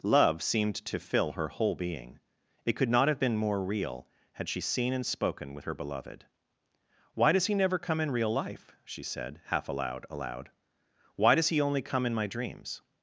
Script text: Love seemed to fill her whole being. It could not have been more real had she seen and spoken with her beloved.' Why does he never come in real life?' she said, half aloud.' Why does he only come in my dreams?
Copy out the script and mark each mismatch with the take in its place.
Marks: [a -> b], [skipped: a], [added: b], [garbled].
Love seemed to fill her whole being. It could not have been more real had she seen and spoken with her beloved.' Why does he never come in real life?' she said, half aloud.' [added: aloud] Why does he only come in my dreams?